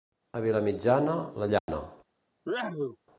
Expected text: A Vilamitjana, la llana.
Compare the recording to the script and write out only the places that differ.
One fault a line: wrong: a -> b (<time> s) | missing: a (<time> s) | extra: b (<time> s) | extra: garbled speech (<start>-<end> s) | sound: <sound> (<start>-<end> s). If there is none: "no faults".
sound: dropout (1.6-1.7 s)
sound: sneeze (2.5-3.0 s)